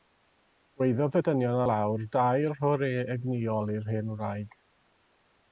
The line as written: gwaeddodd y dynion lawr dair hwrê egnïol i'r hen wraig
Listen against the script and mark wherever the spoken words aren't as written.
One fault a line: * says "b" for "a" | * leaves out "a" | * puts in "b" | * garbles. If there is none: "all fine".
all fine